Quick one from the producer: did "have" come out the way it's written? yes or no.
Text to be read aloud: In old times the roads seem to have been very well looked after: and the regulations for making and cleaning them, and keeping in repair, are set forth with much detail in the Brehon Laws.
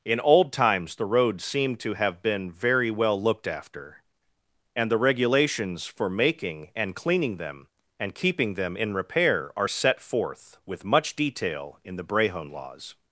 yes